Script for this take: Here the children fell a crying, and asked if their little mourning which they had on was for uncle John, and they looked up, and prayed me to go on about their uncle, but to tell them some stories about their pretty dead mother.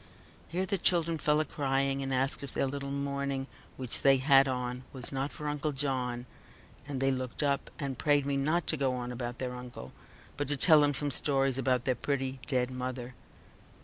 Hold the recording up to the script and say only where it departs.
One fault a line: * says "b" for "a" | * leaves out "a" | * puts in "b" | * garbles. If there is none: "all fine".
* puts in "not"
* puts in "not"